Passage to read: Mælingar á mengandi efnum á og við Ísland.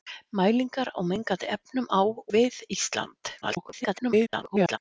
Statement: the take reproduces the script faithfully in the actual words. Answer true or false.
false